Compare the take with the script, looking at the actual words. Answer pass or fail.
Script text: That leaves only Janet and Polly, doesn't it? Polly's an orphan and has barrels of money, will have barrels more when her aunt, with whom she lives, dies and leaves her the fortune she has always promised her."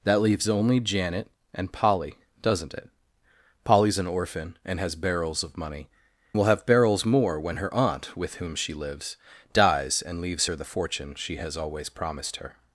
pass